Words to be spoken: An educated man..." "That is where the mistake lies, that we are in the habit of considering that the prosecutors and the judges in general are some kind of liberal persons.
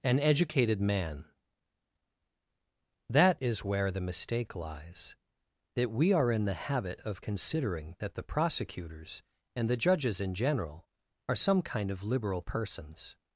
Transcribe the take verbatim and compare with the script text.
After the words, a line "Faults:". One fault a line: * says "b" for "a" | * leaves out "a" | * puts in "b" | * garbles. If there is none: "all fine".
An educated man..." "That is where the mistake lies, that we are in the habit of considering that the prosecutors and the judges in general are some kind of liberal persons.
Faults:
all fine